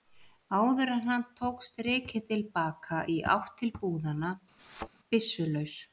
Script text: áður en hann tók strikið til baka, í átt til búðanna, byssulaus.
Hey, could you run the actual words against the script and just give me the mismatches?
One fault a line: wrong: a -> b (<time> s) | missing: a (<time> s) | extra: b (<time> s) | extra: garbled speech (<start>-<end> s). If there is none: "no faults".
no faults